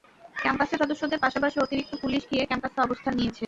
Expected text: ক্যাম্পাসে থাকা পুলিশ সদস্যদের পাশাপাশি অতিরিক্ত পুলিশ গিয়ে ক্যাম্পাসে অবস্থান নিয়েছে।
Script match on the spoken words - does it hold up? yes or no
no